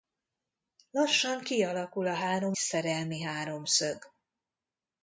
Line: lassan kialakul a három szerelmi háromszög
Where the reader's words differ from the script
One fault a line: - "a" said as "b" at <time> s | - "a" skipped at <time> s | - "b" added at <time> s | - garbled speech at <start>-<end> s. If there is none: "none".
none